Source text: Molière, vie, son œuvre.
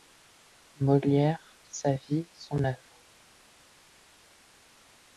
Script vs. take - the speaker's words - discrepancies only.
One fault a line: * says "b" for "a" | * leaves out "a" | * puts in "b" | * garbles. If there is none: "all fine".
* puts in "sa"